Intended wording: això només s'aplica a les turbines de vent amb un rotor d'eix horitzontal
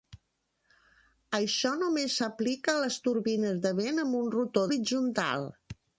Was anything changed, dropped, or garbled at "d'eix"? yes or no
yes